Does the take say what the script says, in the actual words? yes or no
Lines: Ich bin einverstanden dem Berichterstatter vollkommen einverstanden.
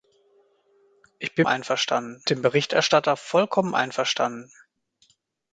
yes